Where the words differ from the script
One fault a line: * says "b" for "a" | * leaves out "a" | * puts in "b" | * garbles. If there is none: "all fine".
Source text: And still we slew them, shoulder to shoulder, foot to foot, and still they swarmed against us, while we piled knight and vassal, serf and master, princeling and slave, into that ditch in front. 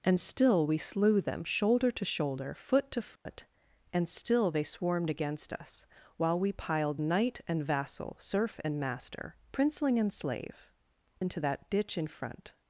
all fine